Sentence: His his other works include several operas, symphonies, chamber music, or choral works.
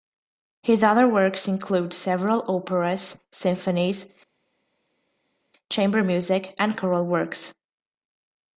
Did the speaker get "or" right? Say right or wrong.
wrong